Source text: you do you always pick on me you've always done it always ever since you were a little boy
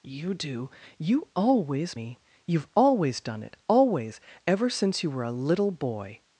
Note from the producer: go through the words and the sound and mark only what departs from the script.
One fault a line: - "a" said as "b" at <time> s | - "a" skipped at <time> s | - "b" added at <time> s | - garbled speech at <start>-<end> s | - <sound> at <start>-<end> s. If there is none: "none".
- "pick on" skipped at 1.9 s